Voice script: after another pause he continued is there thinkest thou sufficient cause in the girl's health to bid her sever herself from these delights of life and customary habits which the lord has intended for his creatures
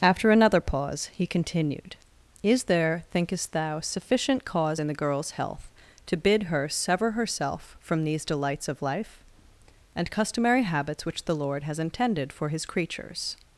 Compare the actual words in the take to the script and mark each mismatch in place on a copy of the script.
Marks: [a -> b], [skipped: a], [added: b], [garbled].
after another pause he continued is there thinkest thou sufficient cause in the girl's health to bid her sever herself from these delights of life and customary habits which the lord has intended for his creatures